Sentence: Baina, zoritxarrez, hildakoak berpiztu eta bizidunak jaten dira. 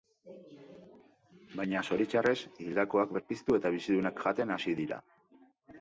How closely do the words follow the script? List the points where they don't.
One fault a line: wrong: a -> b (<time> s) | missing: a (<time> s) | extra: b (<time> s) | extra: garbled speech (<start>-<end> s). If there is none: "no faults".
extra: hasi (4.6 s)